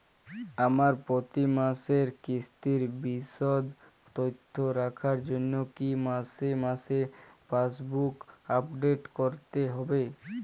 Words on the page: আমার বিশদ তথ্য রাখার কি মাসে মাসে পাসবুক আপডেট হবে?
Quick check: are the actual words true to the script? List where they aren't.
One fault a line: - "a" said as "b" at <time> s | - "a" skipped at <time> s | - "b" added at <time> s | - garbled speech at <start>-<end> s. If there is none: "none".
- "প্রতি মাসের কিস্তির" added at 1.1 s
- "জন্য" added at 5.3 s
- "করতে" added at 9.2 s